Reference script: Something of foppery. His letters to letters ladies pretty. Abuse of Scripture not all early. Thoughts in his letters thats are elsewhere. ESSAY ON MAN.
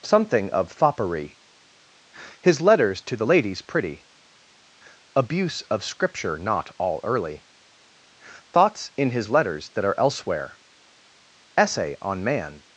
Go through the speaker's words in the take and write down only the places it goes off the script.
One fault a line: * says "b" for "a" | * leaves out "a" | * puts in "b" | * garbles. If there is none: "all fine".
* says "the" for "letters"
* says "that" for "thats"